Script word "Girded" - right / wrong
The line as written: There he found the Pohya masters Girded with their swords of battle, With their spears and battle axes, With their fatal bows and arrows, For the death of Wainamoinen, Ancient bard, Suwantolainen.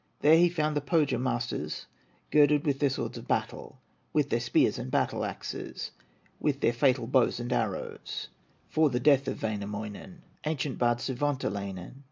right